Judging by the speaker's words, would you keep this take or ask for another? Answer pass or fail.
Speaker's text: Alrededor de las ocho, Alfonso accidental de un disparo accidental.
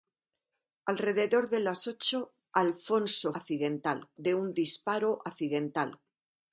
pass